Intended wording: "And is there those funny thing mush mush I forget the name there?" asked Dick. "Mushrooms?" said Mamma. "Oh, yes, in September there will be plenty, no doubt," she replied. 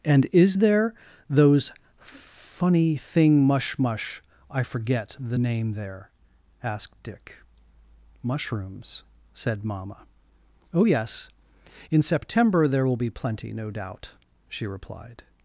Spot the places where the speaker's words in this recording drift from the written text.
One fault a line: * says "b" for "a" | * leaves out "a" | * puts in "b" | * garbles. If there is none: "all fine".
all fine